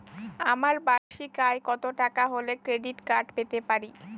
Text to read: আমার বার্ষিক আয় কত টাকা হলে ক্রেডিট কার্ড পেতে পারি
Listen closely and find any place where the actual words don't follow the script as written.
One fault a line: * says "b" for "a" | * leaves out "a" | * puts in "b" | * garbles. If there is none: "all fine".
all fine